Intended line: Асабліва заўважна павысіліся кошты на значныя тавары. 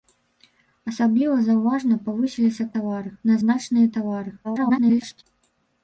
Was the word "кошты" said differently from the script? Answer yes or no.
yes